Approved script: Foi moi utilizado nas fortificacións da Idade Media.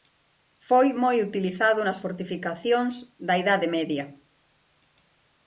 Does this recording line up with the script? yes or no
yes